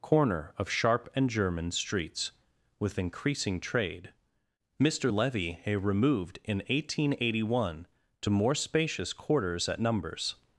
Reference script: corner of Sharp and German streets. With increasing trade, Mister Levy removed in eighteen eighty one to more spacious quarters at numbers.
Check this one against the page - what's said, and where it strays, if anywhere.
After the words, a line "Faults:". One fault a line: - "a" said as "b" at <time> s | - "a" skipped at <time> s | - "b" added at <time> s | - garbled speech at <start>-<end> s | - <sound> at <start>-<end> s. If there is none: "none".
corner of Sharp and German streets. With increasing trade, Mister Levy removed in eighteen eighty one to more spacious quarters at numbers.
Faults:
none